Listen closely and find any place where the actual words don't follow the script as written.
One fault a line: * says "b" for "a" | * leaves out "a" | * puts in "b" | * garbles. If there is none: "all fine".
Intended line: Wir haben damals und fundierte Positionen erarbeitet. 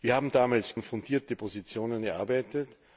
all fine